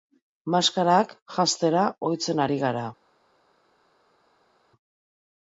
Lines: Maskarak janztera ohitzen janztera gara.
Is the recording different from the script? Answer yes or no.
yes